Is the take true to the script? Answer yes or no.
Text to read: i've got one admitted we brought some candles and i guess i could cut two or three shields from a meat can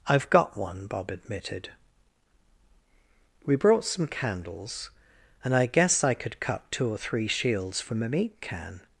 no